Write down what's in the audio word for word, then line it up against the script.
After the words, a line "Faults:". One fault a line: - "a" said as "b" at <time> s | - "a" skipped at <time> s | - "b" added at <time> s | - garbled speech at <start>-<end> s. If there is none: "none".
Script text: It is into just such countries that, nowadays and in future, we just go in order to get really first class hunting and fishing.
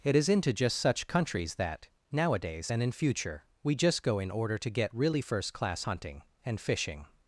It is into just such countries that, nowadays and in future, we just go in order to get really first class hunting and fishing.
Faults:
none